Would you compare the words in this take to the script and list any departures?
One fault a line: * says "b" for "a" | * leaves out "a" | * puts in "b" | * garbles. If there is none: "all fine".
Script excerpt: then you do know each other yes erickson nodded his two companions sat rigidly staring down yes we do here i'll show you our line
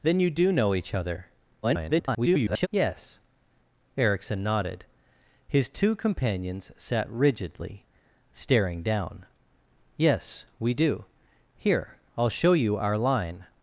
* garbles